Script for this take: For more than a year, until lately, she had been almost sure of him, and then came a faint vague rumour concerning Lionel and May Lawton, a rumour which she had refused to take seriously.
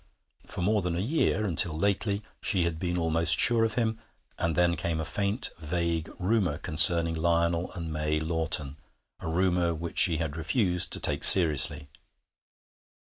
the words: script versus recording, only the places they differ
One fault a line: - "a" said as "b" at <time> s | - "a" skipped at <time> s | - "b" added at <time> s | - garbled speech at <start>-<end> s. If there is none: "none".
none